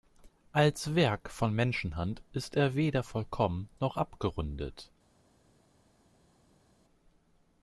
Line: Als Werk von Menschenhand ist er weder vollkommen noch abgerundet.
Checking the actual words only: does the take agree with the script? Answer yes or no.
yes